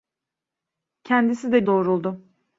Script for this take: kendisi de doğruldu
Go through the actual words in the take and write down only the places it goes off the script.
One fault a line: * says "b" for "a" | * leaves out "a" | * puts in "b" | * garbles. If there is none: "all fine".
all fine